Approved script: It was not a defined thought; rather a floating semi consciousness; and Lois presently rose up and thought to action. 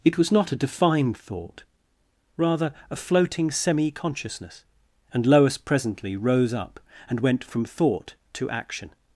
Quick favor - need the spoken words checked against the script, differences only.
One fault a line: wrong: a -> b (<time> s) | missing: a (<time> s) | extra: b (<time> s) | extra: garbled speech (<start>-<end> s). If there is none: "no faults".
extra: went from (7.2 s)